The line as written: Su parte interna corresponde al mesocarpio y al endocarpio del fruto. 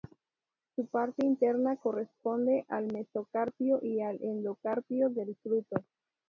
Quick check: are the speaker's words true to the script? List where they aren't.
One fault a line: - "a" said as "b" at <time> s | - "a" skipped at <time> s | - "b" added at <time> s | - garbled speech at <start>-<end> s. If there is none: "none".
none